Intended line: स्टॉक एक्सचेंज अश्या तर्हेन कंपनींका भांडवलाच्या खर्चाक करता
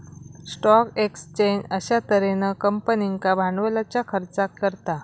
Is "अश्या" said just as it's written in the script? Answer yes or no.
yes